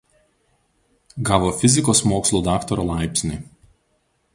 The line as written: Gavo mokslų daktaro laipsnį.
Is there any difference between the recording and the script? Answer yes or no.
yes